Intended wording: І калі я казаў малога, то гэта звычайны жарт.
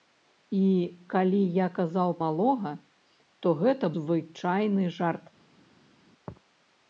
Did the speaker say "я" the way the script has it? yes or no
yes